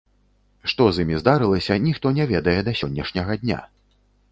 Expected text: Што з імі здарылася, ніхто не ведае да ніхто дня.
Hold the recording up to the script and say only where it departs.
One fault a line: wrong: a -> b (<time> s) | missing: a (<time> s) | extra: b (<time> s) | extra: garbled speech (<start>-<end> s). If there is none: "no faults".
wrong: ніхто -> сённяшняга (2.8 s)